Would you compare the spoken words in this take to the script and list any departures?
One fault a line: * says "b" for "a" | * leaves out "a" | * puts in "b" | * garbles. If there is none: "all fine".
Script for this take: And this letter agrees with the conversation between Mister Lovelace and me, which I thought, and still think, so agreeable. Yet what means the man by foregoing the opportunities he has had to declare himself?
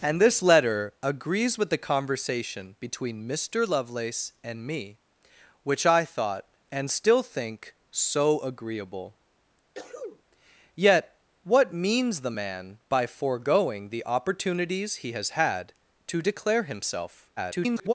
* garbles